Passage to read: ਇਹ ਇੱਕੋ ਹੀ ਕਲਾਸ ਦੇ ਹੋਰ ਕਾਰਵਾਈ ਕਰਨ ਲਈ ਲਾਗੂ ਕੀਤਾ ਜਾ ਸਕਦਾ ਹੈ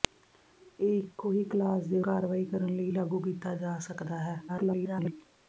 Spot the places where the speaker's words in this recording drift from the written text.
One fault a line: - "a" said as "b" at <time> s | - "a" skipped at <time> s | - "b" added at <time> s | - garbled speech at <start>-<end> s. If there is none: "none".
- "ਹੋਰ" skipped at 2.0 s
- garbled speech at 4.5-5.1 s